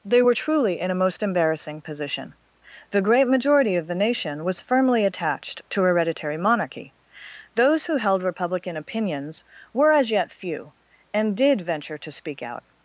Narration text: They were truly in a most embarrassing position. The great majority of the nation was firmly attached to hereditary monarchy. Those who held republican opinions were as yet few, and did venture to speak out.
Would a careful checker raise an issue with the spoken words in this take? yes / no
no